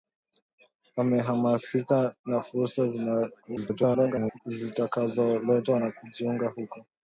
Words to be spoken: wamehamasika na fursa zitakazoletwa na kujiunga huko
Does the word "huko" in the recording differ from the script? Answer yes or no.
no